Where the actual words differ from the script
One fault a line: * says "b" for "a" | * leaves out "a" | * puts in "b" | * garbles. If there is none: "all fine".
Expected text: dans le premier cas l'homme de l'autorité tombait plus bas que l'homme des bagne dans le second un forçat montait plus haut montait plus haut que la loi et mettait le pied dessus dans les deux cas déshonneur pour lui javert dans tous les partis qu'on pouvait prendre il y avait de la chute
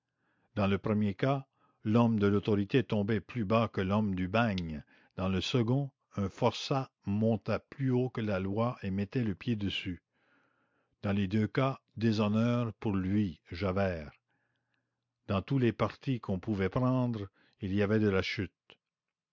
* says "du" for "des"
* leaves out "montait plus haut"